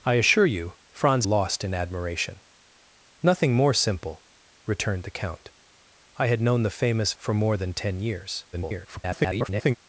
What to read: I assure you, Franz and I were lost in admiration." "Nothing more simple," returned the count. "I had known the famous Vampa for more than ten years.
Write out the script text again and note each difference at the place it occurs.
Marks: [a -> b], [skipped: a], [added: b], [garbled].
I assure you, Franz [skipped: and I were] lost in admiration." "Nothing more simple," returned the count. "I had known the famous [skipped: Vampa] for more than ten years. [garbled]